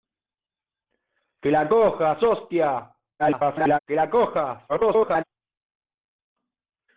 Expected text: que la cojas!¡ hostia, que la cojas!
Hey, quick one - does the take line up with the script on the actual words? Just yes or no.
no